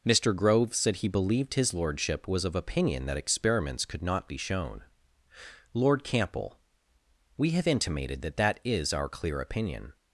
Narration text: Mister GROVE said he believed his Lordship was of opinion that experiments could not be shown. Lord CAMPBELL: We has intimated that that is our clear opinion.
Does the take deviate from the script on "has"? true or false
true